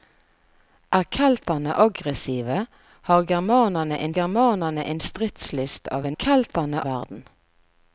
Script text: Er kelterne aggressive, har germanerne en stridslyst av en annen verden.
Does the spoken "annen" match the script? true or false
false